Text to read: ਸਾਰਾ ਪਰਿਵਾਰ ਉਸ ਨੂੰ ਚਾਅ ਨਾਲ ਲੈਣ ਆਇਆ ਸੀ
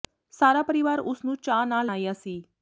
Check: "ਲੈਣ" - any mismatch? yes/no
yes